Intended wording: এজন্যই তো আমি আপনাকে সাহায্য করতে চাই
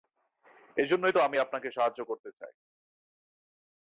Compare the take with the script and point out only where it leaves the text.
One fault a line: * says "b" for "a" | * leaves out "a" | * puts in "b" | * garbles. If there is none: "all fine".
all fine